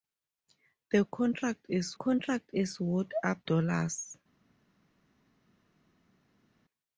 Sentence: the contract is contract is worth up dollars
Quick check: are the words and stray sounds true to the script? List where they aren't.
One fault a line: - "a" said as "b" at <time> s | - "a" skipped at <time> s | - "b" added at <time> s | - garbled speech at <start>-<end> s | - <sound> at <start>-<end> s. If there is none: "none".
none